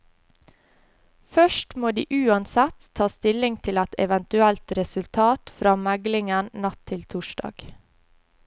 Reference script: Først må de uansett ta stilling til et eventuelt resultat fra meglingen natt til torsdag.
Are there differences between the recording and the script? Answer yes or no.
no